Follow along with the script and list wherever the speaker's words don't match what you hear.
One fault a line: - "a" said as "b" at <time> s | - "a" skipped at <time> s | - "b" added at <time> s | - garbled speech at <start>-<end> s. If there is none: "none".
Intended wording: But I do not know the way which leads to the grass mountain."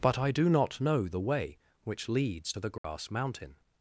none